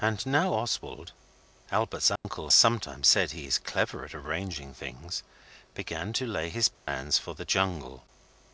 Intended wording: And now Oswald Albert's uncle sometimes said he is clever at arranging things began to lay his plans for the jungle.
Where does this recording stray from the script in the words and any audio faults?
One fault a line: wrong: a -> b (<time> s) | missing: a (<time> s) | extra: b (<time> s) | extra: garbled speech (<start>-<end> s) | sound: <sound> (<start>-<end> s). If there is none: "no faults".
sound: dropout (2.2-2.2 s)
sound: dropout (6.7-6.9 s)